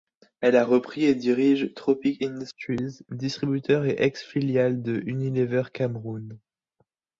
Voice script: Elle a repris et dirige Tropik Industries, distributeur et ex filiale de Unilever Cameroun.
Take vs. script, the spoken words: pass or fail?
pass